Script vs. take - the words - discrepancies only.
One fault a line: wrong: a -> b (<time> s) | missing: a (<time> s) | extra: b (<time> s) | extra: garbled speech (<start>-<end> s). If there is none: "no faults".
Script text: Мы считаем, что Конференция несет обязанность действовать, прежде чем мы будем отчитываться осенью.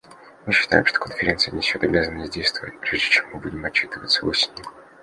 no faults